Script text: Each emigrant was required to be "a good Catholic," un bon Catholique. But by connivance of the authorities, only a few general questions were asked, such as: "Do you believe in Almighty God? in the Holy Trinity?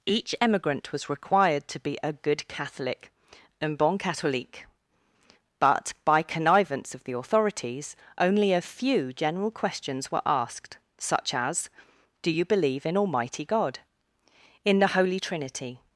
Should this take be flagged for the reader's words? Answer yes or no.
no